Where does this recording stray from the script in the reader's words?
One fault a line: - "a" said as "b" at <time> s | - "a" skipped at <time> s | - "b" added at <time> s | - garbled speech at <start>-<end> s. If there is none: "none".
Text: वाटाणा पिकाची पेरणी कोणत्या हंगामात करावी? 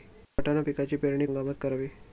- "कोणत्या" skipped at 1.3 s